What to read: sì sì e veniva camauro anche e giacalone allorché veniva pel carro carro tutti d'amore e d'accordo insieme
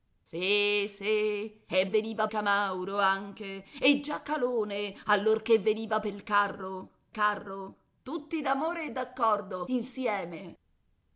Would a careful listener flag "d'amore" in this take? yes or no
no